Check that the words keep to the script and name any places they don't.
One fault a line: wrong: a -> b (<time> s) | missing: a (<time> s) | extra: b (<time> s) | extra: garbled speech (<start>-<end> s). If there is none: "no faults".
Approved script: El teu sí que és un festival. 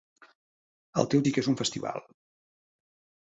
no faults